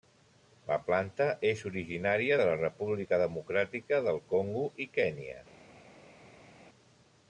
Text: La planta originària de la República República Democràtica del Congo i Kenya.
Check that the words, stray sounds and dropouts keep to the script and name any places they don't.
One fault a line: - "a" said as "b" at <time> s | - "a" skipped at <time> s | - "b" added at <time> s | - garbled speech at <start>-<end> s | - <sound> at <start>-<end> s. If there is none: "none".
- "és" added at 1.5 s
- "República" skipped at 3.2 s